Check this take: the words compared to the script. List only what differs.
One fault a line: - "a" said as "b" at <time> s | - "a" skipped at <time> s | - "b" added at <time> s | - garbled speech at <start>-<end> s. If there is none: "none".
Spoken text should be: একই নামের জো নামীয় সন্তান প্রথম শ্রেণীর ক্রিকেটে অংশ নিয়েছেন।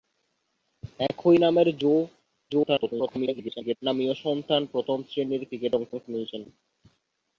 - garbled speech at 2.5-3.8 s
- "অংশ" added at 5.9 s